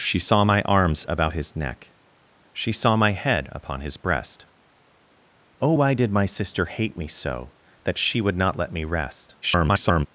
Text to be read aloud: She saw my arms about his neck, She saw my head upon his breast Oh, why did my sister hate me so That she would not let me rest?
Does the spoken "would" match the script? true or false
true